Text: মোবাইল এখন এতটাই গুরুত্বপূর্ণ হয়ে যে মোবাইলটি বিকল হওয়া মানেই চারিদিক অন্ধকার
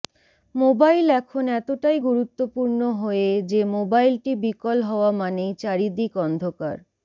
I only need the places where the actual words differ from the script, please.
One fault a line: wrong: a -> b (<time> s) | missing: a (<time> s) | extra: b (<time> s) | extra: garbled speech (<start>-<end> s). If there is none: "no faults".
no faults